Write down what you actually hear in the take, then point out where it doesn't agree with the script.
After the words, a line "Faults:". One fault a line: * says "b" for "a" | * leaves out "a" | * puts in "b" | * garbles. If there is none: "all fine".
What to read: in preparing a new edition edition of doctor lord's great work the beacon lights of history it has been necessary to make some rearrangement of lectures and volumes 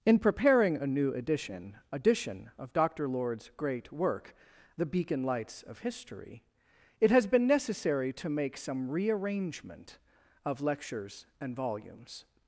in preparing a new edition edition of doctor lord's great work the beacon lights of history it has been necessary to make some rearrangement of lectures and volumes
Faults:
all fine